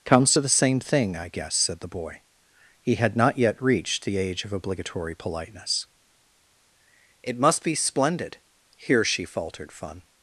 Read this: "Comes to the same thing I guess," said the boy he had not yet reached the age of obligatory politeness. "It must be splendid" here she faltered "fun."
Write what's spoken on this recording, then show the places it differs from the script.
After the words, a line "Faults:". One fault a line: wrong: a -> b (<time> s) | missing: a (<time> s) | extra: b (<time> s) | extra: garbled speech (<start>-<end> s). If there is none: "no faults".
"Comes to the same thing I guess," said the boy he had not yet reached the age of obligatory politeness. "It must be splendid" here she faltered "fun."
Faults:
no faults